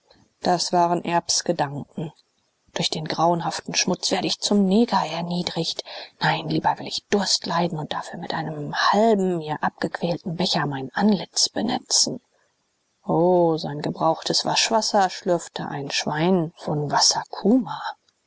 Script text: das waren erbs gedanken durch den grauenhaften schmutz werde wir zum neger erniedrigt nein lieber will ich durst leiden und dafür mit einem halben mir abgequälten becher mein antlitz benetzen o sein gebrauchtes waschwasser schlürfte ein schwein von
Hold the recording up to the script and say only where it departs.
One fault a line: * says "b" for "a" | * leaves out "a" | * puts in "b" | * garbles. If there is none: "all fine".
* says "ich" for "wir"